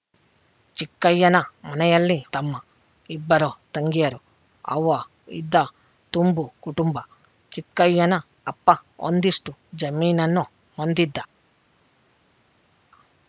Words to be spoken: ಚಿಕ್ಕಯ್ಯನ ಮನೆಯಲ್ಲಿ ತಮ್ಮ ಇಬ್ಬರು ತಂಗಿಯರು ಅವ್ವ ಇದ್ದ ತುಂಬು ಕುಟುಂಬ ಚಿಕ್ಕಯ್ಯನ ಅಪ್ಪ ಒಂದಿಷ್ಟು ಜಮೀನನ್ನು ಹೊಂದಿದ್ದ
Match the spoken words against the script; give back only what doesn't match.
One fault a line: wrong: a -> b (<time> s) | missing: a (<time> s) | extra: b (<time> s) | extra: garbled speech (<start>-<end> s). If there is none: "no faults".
no faults